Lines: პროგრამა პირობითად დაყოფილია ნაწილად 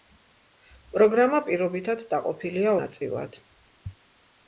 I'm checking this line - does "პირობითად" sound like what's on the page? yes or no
yes